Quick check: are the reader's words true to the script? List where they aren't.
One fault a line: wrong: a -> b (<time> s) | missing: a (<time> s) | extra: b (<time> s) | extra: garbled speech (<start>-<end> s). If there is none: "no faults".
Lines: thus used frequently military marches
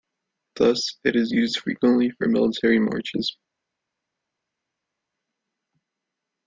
extra: it is (1.0 s)
extra: for (2.2 s)